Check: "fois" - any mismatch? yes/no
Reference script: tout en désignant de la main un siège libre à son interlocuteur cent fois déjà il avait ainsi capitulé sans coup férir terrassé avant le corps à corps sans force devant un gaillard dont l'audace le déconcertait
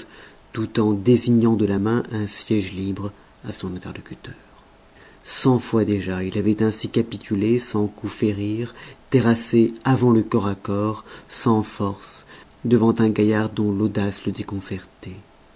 no